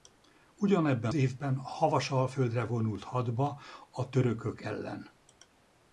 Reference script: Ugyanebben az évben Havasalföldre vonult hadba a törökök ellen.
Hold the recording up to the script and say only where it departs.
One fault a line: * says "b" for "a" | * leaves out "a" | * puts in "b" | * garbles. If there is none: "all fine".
* leaves out "az"